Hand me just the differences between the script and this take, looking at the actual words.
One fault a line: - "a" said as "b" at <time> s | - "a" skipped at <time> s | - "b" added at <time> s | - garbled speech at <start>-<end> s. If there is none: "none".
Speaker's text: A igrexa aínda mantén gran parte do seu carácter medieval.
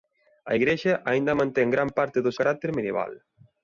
- "seu" skipped at 2.3 s